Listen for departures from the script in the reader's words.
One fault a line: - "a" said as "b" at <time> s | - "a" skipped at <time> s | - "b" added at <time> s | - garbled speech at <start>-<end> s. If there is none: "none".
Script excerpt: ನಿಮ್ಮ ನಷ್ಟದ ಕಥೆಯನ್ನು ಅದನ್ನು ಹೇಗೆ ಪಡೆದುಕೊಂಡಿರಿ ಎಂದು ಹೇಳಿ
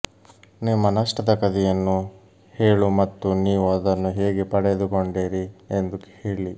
- "ಹೇಳು ಮತ್ತು ನೀವು" added at 2.5 s